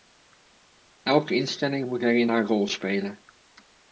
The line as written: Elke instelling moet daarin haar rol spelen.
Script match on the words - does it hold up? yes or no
yes